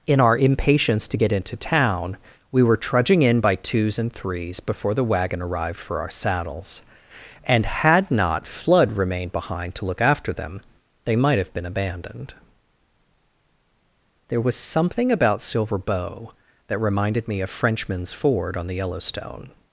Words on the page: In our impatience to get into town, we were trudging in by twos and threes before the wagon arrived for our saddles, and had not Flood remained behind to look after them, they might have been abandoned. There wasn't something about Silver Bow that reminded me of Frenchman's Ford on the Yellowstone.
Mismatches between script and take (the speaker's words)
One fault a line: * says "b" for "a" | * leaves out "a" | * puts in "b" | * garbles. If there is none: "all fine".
* says "was" for "wasn't"